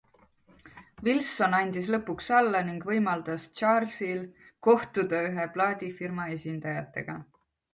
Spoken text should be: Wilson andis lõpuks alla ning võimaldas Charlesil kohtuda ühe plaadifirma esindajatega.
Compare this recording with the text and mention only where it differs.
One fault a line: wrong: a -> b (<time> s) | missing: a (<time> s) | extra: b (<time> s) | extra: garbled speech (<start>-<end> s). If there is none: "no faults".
no faults